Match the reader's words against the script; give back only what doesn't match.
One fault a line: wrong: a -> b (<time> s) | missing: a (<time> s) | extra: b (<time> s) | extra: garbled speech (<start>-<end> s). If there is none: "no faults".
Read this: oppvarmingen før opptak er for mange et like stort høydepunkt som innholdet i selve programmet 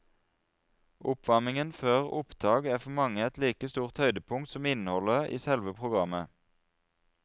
no faults